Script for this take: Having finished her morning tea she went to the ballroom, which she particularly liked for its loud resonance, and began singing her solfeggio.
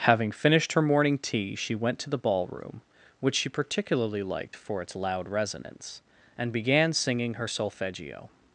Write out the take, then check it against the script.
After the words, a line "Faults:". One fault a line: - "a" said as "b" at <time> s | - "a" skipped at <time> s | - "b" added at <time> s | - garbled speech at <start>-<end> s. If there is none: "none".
Having finished her morning tea she went to the ballroom, which she particularly liked for its loud resonance, and began singing her solfeggio.
Faults:
none